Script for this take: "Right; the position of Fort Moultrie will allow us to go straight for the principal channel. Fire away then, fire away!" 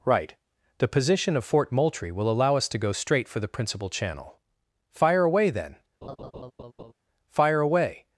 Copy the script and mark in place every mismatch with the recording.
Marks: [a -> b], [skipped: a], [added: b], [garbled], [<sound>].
"Right; the position of Fort Moultrie will allow us to go straight for the principal channel. Fire away then, [laugh] fire away!"